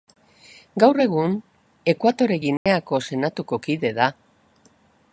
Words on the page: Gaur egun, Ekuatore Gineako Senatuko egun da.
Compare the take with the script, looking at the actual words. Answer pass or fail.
fail